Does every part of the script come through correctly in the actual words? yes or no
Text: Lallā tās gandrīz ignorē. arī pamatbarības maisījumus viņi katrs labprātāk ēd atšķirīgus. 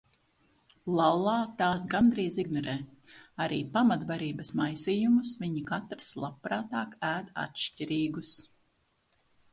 yes